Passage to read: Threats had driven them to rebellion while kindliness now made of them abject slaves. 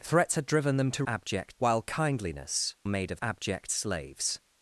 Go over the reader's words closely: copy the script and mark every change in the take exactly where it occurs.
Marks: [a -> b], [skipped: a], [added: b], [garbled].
Threats had driven them to [rebellion -> abject] while kindliness [skipped: now] made of [skipped: them] abject slaves.